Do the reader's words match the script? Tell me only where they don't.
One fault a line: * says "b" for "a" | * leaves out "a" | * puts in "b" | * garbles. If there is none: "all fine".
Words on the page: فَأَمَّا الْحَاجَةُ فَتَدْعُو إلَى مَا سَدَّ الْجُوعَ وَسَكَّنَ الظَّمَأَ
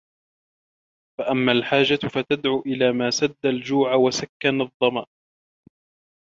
all fine